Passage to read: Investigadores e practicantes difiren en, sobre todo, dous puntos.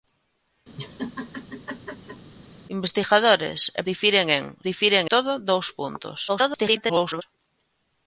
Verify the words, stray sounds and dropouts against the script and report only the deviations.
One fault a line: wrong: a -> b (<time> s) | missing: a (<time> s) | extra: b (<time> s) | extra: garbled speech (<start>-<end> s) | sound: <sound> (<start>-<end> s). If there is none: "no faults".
sound: laugh (0.8-2.3 s)
missing: practicantes (3.8 s)
wrong: sobre -> difiren (4.7 s)
extra: garbled speech (6.3-7.2 s)